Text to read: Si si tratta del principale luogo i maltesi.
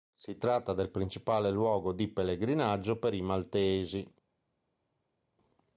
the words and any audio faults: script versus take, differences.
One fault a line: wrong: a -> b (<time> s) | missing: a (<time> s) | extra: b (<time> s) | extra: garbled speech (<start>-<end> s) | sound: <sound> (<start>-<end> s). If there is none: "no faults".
missing: si (0.3 s)
extra: di pellegrinaggio per (1.9 s)